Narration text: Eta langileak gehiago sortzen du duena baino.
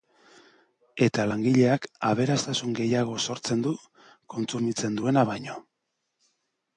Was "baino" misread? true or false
false